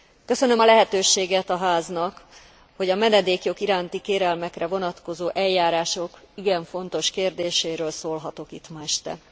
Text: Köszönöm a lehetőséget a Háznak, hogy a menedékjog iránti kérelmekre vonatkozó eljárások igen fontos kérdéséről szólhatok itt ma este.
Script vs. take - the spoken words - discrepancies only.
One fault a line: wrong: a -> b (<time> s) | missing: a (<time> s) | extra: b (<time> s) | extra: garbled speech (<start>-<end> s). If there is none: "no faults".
no faults